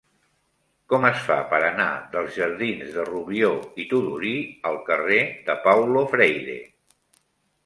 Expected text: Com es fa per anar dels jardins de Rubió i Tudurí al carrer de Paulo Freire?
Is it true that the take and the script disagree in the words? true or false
false